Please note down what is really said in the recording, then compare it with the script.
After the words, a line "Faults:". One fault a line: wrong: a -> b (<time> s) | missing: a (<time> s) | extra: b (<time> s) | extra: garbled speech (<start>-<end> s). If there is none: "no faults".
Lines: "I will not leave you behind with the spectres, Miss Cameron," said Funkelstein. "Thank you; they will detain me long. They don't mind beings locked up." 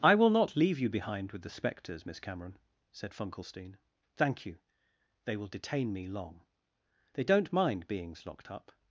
"I will not leave you behind with the spectres, Miss Cameron," said Funkelstein. "Thank you; they will detain me long. They don't mind beings locked up."
Faults:
no faults